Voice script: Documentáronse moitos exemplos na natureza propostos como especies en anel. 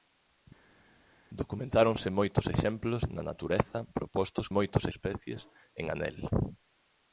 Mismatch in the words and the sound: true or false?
true